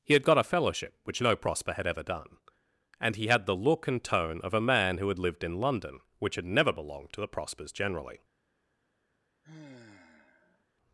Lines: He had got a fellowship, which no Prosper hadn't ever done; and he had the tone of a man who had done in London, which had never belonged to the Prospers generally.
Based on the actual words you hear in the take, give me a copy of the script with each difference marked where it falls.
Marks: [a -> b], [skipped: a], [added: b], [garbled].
He had got a fellowship, which no Prosper [hadn't -> had] ever done; and he had the [added: look and] tone of a man who had [done -> lived] in London, which had never belonged to the Prospers generally.